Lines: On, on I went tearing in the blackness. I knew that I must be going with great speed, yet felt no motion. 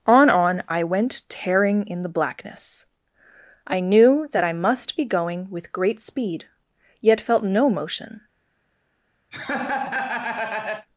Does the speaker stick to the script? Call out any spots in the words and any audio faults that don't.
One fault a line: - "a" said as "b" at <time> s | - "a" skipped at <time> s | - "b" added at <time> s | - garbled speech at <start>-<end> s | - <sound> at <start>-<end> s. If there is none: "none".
- laugh at 9.3-10.9 s